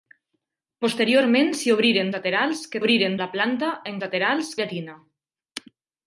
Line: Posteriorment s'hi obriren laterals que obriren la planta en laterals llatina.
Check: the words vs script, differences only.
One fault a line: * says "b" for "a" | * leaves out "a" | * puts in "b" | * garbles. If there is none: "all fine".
all fine